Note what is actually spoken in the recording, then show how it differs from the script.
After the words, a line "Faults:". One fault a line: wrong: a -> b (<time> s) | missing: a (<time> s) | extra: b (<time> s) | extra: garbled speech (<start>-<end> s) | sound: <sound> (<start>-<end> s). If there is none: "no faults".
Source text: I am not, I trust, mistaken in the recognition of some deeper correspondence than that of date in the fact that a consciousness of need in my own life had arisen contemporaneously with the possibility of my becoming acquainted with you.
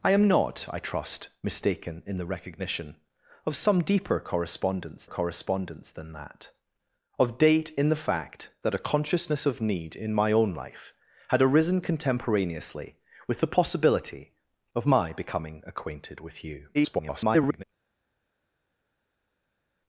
I am not, I trust, mistaken in the recognition of some deeper correspondence correspondence than that of date in the fact that a consciousness of need in my own life had arisen contemporaneously with the possibility of my becoming acquainted with you. [garbled]
Faults:
extra: correspondence (5.0 s)
extra: garbled speech (16.7-17.6 s)